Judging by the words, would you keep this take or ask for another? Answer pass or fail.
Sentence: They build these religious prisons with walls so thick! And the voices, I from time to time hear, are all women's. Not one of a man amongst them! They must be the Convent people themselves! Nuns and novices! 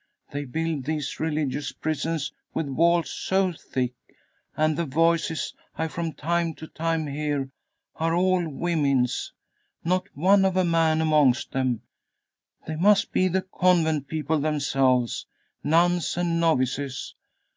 pass